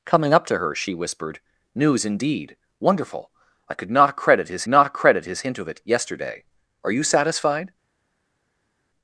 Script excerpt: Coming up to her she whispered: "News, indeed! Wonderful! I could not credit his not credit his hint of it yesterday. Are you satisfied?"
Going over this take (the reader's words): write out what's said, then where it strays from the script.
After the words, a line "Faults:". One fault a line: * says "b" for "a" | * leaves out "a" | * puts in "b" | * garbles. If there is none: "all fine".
Coming up to her she whispered: "News, indeed! Wonderful! I could not credit his not credit his hint of it yesterday. Are you satisfied?"
Faults:
all fine